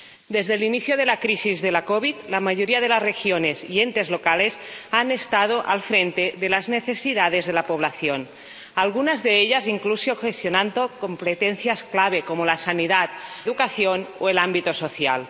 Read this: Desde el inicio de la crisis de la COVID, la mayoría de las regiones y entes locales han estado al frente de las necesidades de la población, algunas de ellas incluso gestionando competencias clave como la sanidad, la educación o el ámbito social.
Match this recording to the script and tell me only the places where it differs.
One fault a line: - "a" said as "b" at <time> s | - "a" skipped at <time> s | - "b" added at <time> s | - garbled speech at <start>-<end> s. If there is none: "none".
- "la" skipped at 13.1 s